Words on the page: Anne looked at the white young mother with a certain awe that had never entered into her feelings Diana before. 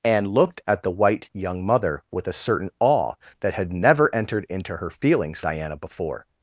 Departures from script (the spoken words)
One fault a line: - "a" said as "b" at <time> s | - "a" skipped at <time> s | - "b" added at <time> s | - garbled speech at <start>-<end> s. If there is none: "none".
none